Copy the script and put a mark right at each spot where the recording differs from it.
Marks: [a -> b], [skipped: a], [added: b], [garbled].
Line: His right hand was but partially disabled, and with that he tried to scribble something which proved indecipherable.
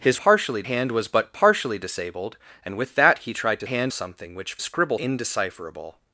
His [right -> partially] hand was but partially disabled, and with that he tried to [scribble -> hand] something which [proved -> scribble] indecipherable.